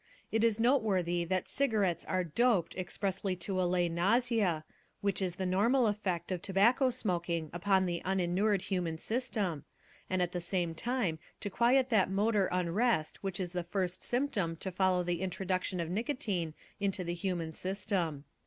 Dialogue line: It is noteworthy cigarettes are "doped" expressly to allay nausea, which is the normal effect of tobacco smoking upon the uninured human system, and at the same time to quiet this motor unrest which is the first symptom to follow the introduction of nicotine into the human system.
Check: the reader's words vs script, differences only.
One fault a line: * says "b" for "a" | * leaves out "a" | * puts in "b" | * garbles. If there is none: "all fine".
* puts in "that"
* says "that" for "this"